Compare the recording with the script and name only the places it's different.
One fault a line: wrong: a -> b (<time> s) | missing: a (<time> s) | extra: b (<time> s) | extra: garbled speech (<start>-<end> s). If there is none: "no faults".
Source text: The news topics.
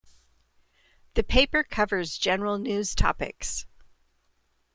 extra: paper covers general (1.2 s)